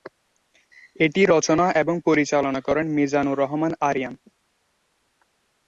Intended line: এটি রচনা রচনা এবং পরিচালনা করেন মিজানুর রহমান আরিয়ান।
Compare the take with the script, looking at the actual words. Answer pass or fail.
fail